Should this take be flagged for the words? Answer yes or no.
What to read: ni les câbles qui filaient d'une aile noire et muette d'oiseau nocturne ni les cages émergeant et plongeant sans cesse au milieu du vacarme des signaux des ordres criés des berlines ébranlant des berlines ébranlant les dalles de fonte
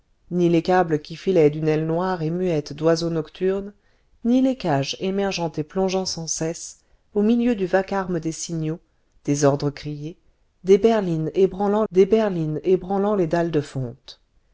no